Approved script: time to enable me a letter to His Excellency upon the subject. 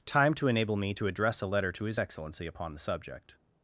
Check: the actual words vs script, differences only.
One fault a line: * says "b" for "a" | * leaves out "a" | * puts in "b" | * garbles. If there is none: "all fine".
* puts in "to address"